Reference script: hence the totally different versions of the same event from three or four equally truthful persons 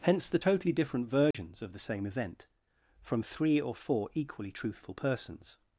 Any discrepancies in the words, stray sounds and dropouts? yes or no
yes